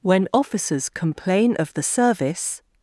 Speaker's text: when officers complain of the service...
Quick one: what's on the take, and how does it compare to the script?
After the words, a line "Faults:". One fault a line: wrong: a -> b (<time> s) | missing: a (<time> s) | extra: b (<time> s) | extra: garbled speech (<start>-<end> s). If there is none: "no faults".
when officers complain of the service...
Faults:
no faults